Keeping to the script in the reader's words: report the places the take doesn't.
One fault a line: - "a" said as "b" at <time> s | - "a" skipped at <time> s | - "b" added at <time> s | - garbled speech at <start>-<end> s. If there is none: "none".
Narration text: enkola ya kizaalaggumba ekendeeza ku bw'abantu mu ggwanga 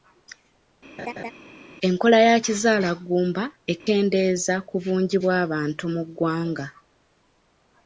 - "bungi" added at 4.8 s